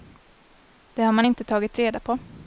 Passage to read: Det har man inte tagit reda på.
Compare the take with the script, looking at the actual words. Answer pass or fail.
pass